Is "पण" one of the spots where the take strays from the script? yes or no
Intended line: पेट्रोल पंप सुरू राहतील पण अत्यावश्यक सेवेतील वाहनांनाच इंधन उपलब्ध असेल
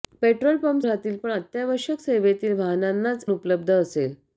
no